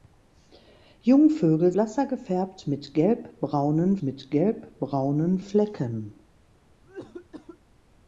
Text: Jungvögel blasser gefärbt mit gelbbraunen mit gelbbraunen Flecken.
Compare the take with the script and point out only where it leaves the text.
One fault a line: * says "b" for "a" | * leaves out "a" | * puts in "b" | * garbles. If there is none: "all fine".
all fine